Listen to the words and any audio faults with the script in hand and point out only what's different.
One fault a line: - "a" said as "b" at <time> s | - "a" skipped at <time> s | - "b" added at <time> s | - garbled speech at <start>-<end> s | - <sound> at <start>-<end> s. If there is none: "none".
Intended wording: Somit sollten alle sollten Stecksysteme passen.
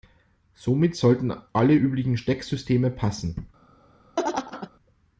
- "sollten" said as "üblichen" at 1.7 s
- laugh at 4.2-4.7 s